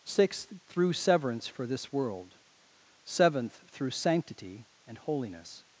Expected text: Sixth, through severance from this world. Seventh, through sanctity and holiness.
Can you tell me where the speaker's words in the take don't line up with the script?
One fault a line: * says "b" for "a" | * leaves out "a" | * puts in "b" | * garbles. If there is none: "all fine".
* says "for" for "from"